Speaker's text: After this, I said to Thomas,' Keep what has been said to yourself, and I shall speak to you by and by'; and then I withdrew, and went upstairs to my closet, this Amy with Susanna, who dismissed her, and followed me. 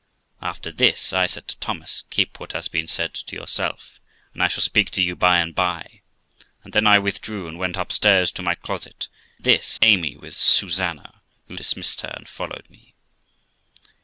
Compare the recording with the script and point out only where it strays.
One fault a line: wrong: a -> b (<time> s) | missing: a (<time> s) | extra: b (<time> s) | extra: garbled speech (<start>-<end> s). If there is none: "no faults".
no faults